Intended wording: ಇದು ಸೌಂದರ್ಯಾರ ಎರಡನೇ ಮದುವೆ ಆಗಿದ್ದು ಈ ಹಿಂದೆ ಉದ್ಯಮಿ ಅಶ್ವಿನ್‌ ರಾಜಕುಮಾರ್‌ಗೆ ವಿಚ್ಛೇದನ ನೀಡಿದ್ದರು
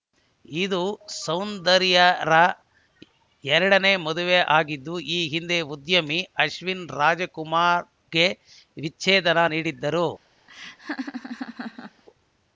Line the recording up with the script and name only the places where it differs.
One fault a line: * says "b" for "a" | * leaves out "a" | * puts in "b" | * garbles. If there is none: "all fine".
all fine